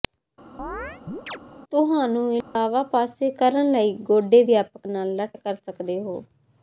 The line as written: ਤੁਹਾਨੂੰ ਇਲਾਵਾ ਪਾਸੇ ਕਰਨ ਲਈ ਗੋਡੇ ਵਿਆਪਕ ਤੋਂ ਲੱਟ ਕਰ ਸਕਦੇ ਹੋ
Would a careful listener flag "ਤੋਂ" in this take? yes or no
yes